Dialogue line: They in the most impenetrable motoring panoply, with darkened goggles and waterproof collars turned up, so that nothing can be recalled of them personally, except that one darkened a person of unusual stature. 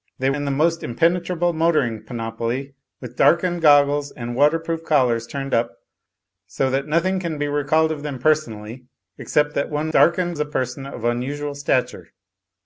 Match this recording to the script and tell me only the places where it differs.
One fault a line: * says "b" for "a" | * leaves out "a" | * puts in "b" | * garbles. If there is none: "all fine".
all fine